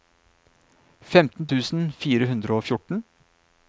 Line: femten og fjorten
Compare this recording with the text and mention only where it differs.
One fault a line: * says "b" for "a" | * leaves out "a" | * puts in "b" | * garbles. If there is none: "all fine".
* puts in "tusen fire hundre"